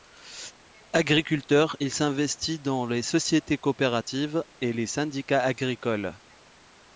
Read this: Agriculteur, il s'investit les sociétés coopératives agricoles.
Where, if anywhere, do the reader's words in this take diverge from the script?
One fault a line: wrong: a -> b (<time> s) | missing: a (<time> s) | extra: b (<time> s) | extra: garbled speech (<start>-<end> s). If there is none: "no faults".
extra: dans (2.6 s)
extra: et les syndicats (4.6 s)